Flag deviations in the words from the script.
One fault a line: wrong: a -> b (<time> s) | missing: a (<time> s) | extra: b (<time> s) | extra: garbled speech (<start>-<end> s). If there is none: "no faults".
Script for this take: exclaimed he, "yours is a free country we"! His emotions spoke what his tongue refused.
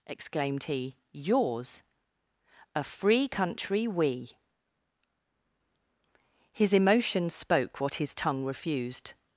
missing: is (1.8 s)